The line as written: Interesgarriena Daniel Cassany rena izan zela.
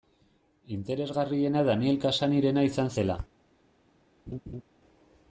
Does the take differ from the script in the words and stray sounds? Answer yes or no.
yes